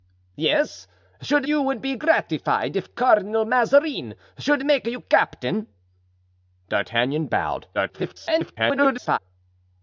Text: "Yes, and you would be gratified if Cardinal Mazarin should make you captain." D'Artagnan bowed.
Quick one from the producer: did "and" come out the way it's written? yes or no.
no